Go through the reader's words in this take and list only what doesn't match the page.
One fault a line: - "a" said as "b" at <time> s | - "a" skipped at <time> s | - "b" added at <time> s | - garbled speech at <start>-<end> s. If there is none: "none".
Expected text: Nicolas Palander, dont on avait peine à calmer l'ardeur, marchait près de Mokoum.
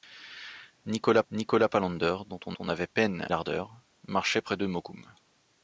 - "nicolas" added at 1.3 s
- "on" added at 2.6 s
- "à calmer" skipped at 3.3 s